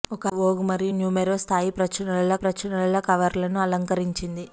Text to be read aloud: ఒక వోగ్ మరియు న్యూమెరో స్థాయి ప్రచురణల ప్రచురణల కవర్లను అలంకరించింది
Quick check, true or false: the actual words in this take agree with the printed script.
true